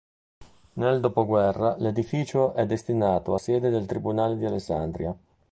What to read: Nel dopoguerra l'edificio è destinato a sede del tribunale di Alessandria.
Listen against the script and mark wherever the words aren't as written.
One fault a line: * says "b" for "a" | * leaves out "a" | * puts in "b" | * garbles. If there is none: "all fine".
all fine